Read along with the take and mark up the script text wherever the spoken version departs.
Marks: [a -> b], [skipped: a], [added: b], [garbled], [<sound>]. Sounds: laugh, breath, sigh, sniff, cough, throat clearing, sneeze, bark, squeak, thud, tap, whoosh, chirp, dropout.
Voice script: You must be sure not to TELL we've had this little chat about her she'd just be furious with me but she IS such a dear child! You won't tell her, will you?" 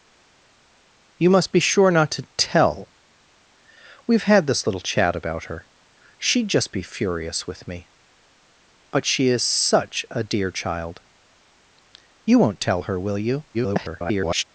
You must be sure not to TELL we've had this little chat about her she'd just be furious with me but she IS such a dear child! You won't tell her, will you?" [garbled]